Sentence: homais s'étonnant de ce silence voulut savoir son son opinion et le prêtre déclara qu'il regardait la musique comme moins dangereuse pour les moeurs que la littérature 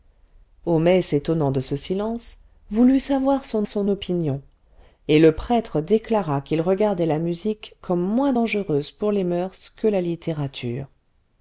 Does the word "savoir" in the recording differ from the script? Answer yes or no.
no